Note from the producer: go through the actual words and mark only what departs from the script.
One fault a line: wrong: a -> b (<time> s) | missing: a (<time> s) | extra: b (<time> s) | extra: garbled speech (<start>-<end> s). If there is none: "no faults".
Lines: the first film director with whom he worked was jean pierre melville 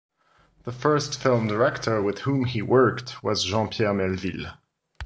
no faults